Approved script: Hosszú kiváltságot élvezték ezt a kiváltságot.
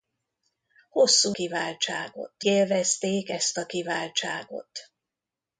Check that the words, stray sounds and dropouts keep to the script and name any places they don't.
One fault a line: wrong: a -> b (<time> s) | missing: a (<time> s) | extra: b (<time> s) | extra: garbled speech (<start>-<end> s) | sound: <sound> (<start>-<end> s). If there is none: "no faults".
no faults